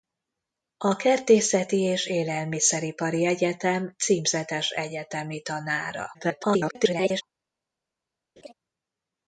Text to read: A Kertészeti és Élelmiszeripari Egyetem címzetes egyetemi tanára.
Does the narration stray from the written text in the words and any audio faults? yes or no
yes